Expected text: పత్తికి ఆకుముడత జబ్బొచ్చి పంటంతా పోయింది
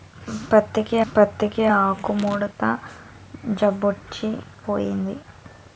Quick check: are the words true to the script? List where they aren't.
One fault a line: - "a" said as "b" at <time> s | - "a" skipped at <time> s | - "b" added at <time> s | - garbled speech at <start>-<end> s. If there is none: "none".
- "పత్తికి" added at 1.1 s
- "పంటంతా" skipped at 4.3 s